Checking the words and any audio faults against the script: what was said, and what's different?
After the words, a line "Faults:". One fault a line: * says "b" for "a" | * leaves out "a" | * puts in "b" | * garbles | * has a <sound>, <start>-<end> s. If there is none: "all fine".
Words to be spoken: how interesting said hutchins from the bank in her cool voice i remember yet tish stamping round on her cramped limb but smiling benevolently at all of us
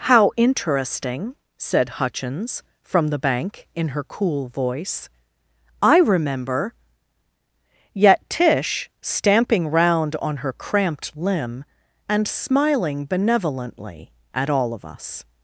how interesting said hutchins from the bank in her cool voice i remember yet tish stamping round on her cramped limb and smiling benevolently at all of us
Faults:
* says "and" for "but"